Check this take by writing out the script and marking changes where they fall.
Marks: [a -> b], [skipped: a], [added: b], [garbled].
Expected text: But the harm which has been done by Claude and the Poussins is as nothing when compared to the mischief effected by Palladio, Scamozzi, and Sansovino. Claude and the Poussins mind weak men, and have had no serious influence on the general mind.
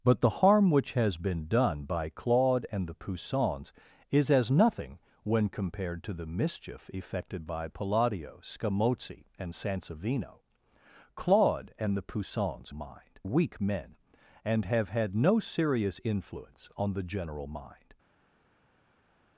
But the harm which has been done by Claude and the Poussins is as nothing when compared to the mischief effected by Palladio, Scamozzi, and Sansovino. Claude and the Poussins mind weak men, and have had no serious influence on the general mind.